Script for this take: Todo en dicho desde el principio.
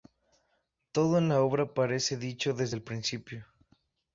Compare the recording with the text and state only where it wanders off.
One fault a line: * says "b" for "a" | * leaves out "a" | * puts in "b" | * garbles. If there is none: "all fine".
* puts in "la obra parece"